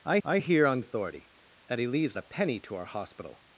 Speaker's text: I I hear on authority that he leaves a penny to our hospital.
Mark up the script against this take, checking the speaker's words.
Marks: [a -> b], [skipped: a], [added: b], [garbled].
I I hear on authority that he leaves a penny to our hospital.